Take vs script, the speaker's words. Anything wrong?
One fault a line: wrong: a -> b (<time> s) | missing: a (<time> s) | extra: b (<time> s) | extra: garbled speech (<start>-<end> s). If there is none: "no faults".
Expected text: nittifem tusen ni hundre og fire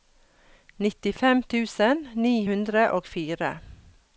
no faults